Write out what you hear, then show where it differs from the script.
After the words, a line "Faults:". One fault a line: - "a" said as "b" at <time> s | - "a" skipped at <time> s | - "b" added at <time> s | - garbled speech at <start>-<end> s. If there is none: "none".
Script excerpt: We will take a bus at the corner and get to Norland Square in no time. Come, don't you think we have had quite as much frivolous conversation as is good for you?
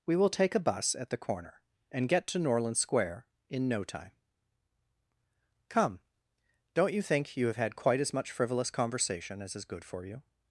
We will take a bus at the corner and get to Norland Square in no time. Come, don't you think you have had quite as much frivolous conversation as is good for you?
Faults:
- "we" said as "you" at 7.3 s